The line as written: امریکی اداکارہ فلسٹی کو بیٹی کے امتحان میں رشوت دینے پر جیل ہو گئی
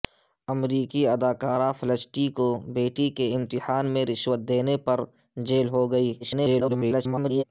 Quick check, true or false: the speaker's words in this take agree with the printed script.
false